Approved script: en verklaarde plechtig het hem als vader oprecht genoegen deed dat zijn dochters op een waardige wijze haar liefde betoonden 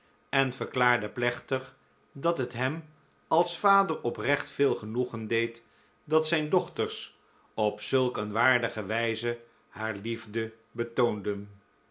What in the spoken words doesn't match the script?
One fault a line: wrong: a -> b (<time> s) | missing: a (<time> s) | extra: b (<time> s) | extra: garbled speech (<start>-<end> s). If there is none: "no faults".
extra: dat (2.1 s)
extra: veel (4.5 s)
extra: zulk (7.8 s)